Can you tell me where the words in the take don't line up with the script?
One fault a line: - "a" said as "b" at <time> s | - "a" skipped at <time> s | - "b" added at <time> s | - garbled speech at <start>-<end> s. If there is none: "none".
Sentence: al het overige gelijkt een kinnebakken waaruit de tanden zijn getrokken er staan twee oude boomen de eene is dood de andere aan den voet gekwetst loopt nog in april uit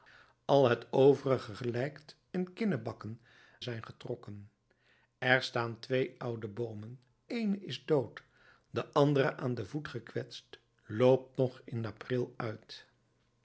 - "waaruit de tanden" skipped at 3.2 s
- "de" skipped at 7.0 s